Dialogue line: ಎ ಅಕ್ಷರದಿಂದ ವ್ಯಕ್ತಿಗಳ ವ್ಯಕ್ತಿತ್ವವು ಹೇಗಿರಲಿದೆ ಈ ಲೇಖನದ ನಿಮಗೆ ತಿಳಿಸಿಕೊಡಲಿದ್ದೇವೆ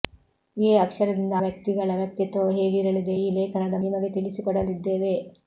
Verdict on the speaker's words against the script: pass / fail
pass